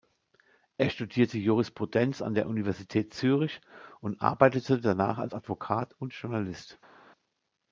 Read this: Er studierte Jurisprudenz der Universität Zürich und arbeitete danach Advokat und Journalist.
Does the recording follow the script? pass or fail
fail